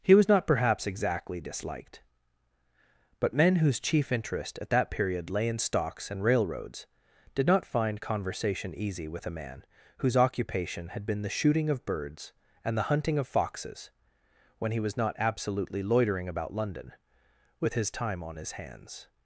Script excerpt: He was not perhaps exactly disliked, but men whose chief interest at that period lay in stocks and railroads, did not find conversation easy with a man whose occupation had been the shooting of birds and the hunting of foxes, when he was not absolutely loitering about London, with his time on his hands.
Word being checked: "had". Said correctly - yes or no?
yes